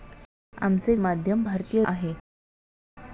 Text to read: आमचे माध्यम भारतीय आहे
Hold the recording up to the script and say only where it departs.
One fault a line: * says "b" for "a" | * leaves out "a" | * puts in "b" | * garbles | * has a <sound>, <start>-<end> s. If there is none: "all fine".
all fine